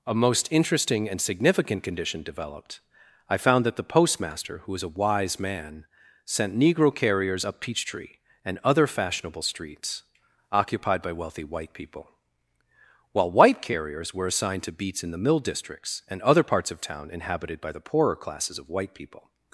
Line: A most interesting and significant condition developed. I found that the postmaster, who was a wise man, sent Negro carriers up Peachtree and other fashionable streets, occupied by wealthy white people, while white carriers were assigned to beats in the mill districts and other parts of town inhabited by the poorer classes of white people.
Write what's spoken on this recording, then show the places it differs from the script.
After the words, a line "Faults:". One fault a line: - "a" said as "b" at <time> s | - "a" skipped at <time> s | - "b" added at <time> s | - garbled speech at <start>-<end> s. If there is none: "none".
A most interesting and significant condition developed. I found that the postmaster, who was a wise man, sent Negro carriers up Peachtree and other fashionable streets, occupied by wealthy white people, while white carriers were assigned to beats in the mill districts and other parts of town inhabited by the poorer classes of white people.
Faults:
none